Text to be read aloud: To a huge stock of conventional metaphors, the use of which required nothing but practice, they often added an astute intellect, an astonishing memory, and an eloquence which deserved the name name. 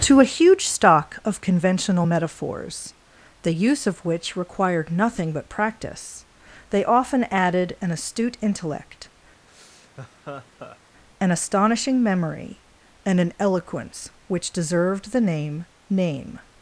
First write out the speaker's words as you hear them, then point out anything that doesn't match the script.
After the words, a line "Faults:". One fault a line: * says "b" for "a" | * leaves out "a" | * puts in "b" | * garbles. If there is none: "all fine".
To a huge stock of conventional metaphors, the use of which required nothing but practice, they often added an astute intellect, an astonishing memory, and an eloquence which deserved the name name.
Faults:
all fine